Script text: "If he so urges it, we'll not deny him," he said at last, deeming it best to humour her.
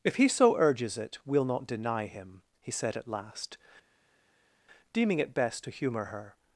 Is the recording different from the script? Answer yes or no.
no